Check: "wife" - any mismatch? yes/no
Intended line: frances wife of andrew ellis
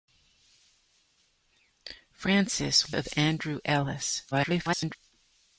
yes